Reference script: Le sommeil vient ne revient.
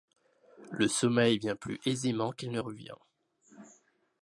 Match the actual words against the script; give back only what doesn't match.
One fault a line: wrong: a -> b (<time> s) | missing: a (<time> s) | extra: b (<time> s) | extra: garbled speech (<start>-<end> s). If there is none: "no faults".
extra: plus aisément qu'il (1.6 s)